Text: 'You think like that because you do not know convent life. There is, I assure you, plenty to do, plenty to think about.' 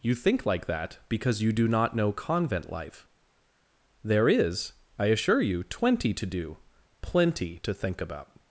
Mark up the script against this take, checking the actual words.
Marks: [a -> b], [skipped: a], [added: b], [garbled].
'You think like that because you do not know convent life. There is, I assure you, [plenty -> twenty] to do, plenty to think about.'